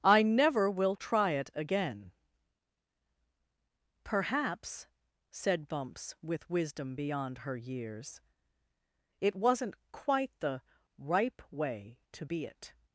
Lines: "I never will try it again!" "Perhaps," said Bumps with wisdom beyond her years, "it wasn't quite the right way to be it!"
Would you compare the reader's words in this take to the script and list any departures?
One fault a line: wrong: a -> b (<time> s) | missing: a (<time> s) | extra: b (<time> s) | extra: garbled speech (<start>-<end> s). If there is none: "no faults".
wrong: right -> ripe (11.0 s)